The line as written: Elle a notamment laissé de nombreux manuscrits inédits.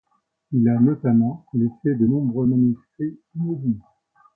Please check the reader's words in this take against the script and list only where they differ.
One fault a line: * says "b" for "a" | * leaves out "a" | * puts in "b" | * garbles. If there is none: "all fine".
* says "Il" for "Elle"